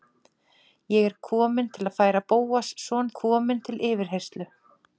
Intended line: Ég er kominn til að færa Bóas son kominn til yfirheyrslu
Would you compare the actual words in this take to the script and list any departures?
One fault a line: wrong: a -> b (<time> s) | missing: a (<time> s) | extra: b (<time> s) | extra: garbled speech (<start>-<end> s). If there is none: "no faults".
no faults